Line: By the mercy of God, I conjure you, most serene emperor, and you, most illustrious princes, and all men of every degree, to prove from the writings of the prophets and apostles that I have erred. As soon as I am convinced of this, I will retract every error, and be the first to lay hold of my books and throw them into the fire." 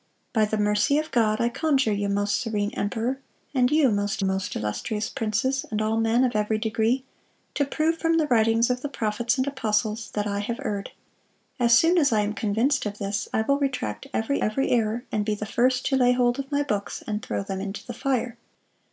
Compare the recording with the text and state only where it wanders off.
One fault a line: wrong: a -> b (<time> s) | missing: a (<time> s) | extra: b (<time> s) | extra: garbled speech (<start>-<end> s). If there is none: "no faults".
extra: most (4.2 s)
extra: every (14.4 s)